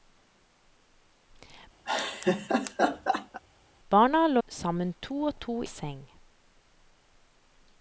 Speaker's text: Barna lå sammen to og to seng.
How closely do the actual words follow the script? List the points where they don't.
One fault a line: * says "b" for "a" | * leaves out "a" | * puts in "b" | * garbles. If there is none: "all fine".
all fine